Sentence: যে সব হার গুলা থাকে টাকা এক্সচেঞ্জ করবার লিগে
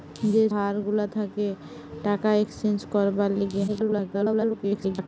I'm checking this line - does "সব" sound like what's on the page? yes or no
no